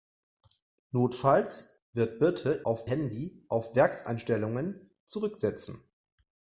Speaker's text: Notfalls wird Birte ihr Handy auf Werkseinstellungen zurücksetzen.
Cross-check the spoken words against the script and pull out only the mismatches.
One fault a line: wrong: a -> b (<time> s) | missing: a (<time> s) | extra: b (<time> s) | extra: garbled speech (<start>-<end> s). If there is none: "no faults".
wrong: ihr -> auf (2.6 s)